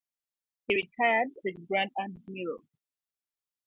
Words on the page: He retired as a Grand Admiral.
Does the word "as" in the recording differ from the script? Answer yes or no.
yes